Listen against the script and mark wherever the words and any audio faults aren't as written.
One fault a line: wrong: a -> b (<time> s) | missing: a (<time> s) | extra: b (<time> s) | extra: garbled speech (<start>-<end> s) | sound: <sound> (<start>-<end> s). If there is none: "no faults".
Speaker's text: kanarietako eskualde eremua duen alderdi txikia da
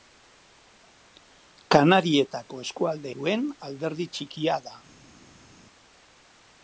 missing: eremua (3.1 s)